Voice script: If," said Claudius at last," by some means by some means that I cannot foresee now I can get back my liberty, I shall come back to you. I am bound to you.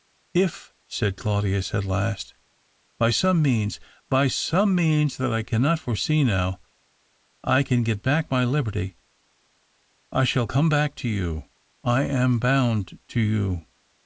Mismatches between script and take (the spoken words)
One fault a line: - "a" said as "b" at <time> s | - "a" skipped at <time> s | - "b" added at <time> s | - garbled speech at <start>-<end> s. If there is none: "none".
none